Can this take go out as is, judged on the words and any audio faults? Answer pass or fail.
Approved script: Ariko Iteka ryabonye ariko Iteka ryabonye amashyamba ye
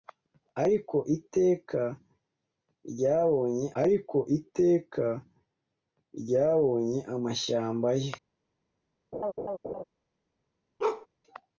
fail